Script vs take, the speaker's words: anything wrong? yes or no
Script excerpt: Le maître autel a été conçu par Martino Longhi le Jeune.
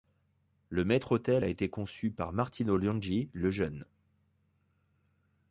no